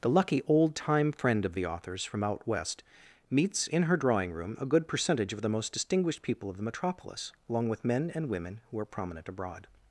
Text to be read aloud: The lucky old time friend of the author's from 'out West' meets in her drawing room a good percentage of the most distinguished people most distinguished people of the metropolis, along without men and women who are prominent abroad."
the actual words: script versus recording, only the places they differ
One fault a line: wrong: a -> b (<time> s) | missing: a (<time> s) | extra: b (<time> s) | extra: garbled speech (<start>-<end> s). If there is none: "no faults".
missing: most distinguished people (6.5 s)
wrong: without -> with (7.7 s)